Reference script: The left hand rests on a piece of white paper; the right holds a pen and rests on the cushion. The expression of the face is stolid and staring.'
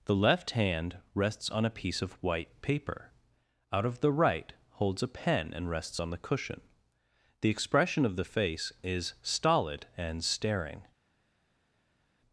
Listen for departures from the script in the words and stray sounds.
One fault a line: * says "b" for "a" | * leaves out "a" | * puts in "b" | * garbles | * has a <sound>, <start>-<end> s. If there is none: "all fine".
* puts in "out of"